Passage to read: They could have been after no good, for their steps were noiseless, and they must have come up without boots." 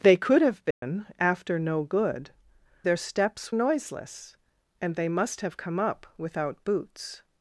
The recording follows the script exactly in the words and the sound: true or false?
false